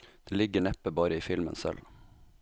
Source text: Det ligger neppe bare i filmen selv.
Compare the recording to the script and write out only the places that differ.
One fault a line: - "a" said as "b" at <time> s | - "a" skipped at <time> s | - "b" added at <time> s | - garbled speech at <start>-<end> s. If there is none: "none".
none